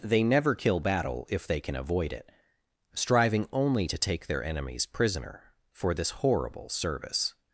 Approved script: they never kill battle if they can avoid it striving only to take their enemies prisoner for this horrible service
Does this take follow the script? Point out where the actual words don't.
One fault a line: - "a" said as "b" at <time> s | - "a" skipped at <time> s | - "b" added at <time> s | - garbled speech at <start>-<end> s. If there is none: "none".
none